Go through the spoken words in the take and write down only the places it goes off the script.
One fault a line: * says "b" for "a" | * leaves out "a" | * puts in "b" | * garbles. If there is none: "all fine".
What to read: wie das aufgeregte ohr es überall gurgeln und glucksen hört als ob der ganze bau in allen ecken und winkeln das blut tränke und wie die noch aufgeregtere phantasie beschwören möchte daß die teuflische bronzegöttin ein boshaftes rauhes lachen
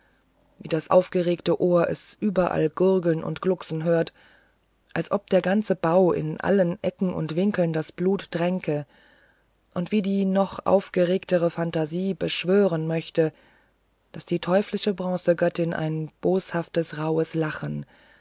all fine